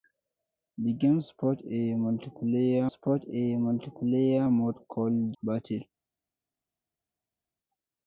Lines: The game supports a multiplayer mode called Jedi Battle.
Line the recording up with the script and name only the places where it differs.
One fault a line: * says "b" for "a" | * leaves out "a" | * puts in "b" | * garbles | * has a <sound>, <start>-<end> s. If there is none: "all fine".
* puts in "supports a multiplayer"
* leaves out "Jedi"